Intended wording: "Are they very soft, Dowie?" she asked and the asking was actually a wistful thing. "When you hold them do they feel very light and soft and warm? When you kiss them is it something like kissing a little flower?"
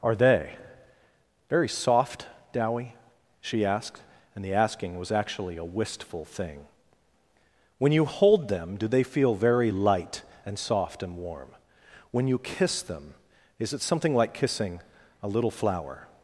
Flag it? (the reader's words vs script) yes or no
no